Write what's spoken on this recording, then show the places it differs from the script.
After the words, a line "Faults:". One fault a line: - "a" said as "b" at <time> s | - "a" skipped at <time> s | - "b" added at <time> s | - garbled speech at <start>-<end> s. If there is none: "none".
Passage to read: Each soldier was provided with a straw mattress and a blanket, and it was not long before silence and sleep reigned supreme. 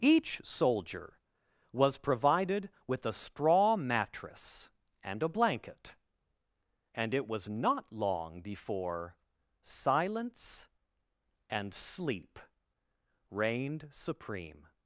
Each soldier was provided with a straw mattress and a blanket, and it was not long before silence and sleep reigned supreme.
Faults:
none